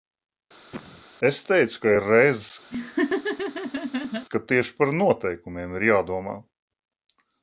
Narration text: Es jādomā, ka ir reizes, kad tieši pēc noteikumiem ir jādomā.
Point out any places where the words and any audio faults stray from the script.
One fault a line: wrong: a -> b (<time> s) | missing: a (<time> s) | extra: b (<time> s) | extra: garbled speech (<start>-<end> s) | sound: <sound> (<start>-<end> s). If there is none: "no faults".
sound: cough (0.7-1.0 s)
wrong: jādomā -> teicu (1.5 s)
sound: laugh (2.7-4.3 s)
wrong: pēc -> par (4.8 s)